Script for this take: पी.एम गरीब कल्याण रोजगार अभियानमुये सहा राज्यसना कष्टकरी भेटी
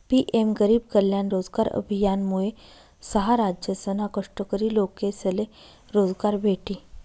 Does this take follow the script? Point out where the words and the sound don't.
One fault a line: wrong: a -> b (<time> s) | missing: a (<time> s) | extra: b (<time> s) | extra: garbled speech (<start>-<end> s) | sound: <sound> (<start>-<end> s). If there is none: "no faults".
extra: लोकेसले रोजगार (4.7 s)